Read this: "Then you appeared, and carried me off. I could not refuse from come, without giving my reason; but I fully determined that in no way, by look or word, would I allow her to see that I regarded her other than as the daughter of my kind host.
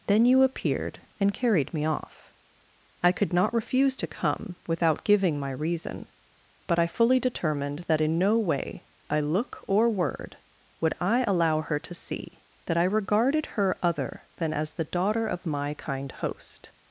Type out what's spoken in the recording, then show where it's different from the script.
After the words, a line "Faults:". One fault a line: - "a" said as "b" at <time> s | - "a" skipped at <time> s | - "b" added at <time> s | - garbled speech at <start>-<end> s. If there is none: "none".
"Then you appeared, and carried me off. I could not refuse to come, without giving my reason; but I fully determined that in no way, by look or word, would I allow her to see that I regarded her other than as the daughter of my kind host.
Faults:
- "from" said as "to" at 4.0 s